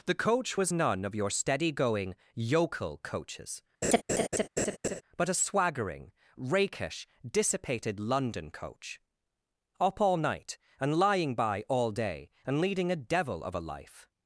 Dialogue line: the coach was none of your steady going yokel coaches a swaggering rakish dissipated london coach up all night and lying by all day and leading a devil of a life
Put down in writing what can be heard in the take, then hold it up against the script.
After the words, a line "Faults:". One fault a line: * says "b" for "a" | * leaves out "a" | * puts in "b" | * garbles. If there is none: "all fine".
the coach was none of your steady going yokel coaches but a swaggering rakish dissipated london coach up all night and lying by all day and leading a devil of a life
Faults:
* puts in "but"